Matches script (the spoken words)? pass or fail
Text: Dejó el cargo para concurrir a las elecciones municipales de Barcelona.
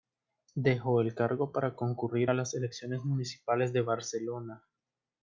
pass